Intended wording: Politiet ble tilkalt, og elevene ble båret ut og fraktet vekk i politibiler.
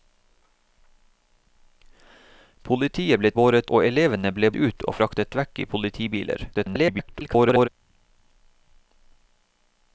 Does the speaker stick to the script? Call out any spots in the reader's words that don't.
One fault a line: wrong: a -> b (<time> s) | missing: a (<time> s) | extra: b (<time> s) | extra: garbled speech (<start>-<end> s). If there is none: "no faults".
wrong: tilkalt -> båret (3.4 s)
missing: båret (4.5 s)
extra: garbled speech (6.5-7.7 s)